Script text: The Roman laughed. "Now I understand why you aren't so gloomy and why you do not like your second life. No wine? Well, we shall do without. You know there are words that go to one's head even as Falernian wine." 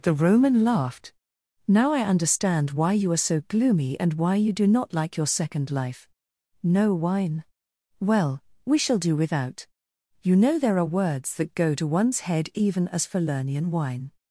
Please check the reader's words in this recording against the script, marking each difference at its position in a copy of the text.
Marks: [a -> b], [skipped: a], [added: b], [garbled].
The Roman laughed. "Now I understand why you [aren't -> are] so gloomy and why you do not like your second life. No wine? Well, we shall do without. You know there are words that go to one's head even as Falernian wine."